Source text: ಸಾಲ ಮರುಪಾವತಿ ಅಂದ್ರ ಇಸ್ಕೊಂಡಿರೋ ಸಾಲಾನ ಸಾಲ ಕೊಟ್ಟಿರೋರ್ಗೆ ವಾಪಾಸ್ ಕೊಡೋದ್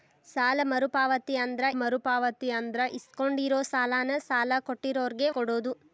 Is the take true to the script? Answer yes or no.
no